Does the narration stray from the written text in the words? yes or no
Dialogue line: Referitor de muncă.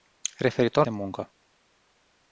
no